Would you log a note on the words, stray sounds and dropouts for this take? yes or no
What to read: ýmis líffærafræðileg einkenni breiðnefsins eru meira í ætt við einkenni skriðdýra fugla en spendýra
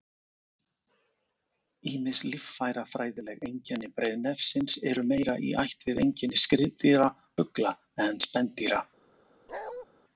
yes